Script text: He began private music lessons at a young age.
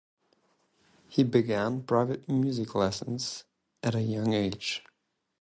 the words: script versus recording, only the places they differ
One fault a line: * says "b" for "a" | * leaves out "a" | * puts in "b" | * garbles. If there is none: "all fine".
all fine